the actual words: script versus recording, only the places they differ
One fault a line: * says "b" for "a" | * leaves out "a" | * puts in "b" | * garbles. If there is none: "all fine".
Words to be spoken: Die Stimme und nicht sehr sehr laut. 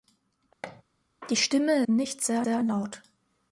all fine